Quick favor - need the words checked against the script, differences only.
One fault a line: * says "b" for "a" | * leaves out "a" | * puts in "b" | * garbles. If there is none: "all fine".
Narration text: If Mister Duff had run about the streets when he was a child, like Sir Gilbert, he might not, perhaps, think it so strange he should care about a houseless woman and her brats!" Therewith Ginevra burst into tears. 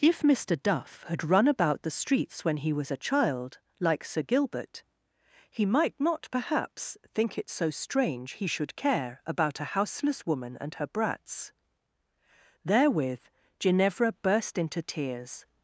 all fine